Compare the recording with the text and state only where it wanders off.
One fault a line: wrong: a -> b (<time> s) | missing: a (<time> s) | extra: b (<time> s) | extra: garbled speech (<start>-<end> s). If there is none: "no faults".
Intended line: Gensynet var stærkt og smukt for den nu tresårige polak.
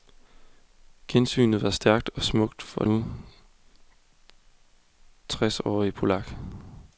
missing: den (2.8 s)